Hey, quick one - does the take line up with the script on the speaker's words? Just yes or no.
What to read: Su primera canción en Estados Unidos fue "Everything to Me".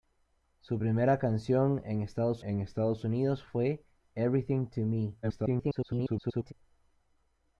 no